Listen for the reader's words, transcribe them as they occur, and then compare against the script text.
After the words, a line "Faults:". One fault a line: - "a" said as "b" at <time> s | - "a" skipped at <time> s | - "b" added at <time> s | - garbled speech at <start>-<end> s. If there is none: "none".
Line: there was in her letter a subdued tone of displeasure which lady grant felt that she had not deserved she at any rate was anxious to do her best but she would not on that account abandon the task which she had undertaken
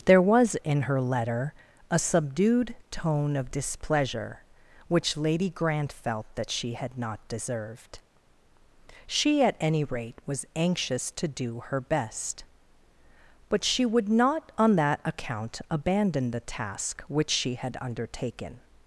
there was in her letter a subdued tone of displeasure which lady grant felt that she had not deserved she at any rate was anxious to do her best but she would not on that account abandon the task which she had undertaken
Faults:
none